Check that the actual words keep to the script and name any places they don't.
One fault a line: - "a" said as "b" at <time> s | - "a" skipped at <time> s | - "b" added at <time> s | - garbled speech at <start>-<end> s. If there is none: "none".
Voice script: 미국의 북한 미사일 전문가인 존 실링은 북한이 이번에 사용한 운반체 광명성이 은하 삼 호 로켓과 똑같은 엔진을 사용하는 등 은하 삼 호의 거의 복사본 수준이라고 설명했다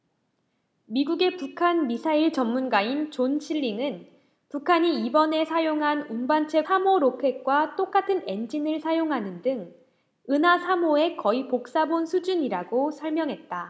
- "광명성이 은하" skipped at 6.7 s